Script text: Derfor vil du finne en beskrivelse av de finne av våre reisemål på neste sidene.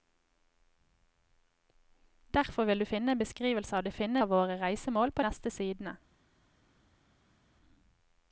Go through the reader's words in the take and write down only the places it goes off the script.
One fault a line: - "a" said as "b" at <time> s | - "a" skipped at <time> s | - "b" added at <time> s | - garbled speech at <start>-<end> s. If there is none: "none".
none